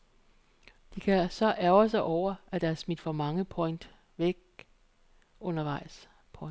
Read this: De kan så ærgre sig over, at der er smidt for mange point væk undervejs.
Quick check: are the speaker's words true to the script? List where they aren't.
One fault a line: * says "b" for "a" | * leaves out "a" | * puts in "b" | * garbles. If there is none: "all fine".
all fine